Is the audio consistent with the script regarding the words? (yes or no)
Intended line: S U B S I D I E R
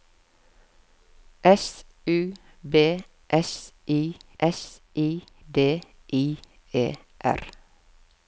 no